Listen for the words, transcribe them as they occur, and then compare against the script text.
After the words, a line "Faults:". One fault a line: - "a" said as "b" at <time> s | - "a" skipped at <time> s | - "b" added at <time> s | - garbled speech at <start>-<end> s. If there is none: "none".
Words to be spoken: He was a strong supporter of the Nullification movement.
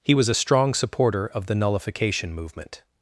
He was a strong supporter of the Nullification movement.
Faults:
none